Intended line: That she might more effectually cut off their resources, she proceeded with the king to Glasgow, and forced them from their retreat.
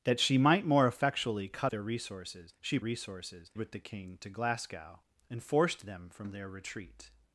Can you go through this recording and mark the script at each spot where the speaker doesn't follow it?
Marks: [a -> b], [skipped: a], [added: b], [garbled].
That she might more effectually cut [skipped: off] their resources, she [proceeded -> resources] with the king to Glasgow, and forced them from their retreat.